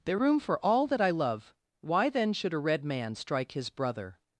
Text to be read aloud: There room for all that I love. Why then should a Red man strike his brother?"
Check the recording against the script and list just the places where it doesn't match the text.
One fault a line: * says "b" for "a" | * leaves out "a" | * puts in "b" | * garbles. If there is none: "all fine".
all fine